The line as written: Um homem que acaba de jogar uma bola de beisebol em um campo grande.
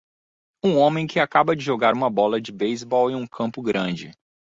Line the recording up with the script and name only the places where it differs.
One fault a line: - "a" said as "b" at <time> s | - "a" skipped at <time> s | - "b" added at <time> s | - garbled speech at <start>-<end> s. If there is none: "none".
none